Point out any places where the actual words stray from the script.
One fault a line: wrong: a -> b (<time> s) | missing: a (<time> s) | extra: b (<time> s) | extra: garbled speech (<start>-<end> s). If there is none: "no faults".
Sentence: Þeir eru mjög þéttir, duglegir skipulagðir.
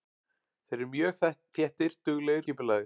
no faults